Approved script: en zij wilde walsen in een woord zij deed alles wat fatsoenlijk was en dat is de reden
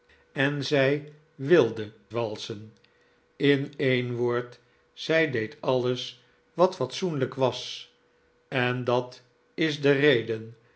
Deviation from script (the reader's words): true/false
false